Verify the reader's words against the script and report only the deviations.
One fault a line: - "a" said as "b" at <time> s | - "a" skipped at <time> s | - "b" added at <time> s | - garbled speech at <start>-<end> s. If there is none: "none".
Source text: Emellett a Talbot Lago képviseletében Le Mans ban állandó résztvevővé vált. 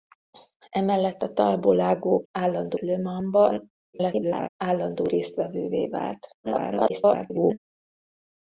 - "képviseletében" said as "állandó" at 2.3 s
- garbled speech at 3.9-4.5 s
- garbled speech at 6.4-7.6 s